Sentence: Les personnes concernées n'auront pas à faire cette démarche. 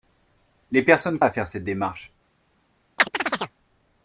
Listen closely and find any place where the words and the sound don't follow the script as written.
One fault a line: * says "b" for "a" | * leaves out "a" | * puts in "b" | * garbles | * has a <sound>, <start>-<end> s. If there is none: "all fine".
* leaves out "concernées n'auront pas"
* has a chirp, 3.0-3.5 s